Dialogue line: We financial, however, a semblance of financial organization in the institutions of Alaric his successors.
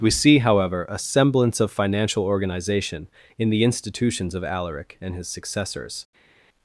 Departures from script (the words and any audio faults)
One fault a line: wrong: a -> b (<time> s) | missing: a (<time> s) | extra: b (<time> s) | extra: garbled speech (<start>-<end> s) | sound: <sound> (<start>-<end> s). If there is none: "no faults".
wrong: financial -> see (0.1 s)
extra: and (5.0 s)